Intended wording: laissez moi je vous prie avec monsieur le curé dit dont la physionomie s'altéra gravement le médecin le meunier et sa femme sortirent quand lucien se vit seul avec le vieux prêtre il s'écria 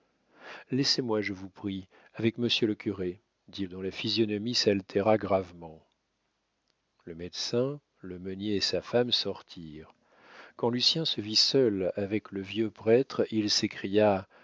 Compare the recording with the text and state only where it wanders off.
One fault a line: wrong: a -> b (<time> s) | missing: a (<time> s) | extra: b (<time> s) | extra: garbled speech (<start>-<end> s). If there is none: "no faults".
no faults